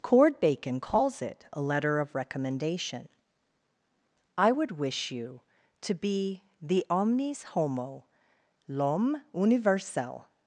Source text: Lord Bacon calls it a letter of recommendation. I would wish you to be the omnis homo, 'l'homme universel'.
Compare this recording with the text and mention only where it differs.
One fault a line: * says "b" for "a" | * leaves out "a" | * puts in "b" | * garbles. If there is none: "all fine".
* says "Cord" for "Lord"